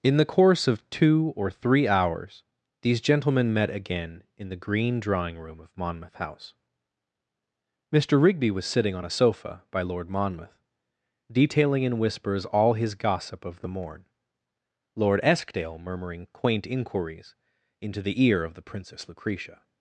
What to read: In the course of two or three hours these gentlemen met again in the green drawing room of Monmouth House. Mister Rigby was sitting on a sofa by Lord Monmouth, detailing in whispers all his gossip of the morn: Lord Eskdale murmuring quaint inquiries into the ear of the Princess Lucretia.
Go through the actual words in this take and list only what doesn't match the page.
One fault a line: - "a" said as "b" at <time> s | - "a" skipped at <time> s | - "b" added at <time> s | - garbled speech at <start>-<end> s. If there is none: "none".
none